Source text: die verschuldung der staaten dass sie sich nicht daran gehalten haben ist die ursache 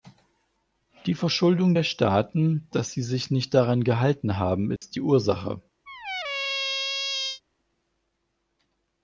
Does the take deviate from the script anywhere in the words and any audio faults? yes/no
yes